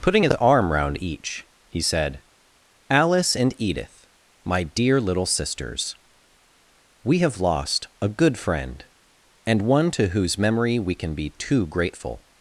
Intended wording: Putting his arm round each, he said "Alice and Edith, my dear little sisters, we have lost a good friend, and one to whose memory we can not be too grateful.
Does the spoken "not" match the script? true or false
false